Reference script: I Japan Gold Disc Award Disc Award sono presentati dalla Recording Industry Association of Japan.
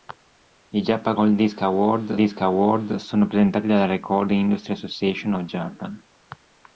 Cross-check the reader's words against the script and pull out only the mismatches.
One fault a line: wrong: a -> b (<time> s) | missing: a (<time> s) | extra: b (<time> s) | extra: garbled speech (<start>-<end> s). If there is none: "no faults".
no faults